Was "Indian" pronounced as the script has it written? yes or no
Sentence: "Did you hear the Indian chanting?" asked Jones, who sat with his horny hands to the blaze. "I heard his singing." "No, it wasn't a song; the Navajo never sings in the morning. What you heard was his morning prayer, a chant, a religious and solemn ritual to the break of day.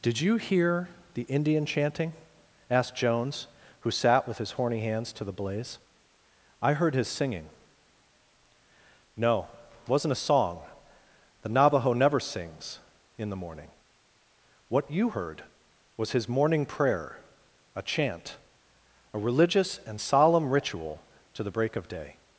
yes